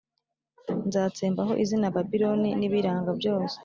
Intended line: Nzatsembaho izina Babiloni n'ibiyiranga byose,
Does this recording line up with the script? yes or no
yes